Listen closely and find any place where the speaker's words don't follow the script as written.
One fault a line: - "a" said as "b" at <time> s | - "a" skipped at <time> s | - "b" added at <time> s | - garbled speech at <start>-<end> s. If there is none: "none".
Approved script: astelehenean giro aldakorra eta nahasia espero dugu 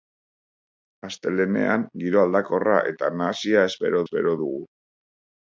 - "espero" added at 4.0 s